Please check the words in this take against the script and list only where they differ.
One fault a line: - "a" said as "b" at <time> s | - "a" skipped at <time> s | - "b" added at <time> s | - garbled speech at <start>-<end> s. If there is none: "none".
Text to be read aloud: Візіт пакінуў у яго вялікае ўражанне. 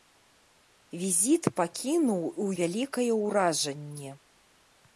- "яго" skipped at 2.5 s